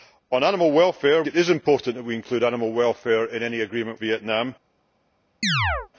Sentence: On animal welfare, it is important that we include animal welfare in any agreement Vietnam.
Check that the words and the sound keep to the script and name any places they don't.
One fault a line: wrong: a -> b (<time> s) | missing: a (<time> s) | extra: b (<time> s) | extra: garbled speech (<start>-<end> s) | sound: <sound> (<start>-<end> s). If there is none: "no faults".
sound: chirp (5.4-5.9 s)